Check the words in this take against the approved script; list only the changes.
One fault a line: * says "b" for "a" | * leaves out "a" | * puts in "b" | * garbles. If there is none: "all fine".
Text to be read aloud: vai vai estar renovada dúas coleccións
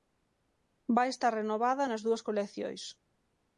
* leaves out "vai"
* puts in "nas"